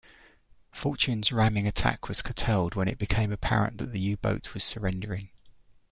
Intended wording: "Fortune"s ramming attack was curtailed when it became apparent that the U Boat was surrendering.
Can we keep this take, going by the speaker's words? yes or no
yes